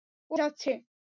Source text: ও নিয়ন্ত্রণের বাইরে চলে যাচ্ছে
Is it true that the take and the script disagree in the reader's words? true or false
true